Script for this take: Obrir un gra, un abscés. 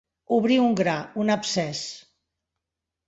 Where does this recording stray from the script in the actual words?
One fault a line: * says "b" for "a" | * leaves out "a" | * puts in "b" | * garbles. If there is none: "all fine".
all fine